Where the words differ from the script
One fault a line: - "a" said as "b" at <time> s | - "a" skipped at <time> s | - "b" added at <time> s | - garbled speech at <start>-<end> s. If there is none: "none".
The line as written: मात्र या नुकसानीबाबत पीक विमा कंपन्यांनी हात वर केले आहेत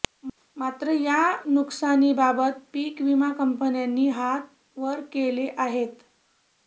none